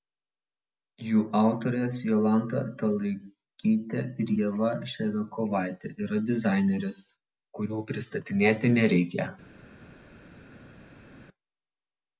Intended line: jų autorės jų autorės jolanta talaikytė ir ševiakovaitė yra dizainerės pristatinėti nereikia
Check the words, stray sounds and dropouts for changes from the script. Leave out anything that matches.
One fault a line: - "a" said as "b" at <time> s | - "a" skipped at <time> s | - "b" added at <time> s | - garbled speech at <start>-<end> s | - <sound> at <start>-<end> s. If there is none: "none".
- "jų autorės" skipped at 2.0 s
- "ieva" added at 4.4 s
- "kurių" added at 7.6 s